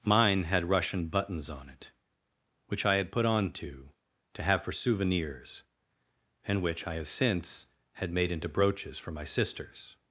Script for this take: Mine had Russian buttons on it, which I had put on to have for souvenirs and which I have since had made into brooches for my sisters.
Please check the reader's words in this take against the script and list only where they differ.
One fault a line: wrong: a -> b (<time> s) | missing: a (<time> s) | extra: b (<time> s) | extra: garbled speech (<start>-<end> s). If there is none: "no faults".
extra: to (4.3 s)